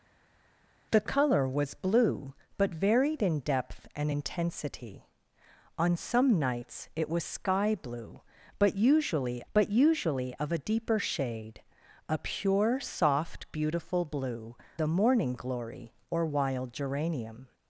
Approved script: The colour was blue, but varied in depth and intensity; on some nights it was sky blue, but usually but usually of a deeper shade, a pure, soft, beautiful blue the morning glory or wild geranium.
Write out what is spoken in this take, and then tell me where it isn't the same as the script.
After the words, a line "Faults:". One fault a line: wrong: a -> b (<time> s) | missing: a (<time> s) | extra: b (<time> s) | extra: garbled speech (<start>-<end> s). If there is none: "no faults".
The colour was blue, but varied in depth and intensity; on some nights it was sky blue, but usually but usually of a deeper shade, a pure, soft, beautiful blue the morning glory or wild geranium.
Faults:
no faults